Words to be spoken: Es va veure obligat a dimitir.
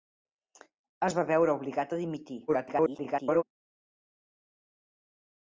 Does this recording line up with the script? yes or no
no